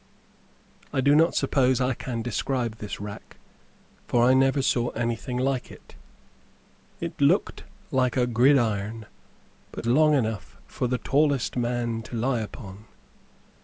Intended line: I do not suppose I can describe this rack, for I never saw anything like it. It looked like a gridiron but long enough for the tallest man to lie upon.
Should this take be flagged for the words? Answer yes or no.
no